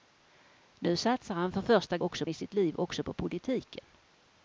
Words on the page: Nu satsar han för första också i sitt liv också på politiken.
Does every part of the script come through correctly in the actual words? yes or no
yes